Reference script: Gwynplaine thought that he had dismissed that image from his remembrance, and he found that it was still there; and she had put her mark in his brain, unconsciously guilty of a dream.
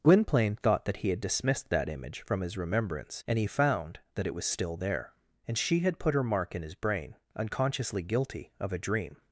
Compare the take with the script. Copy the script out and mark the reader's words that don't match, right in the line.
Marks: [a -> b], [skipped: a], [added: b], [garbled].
Gwynplaine thought that he had dismissed that image from his remembrance, and he found that it was still there; and she had put her mark in his brain, unconsciously guilty of a dream.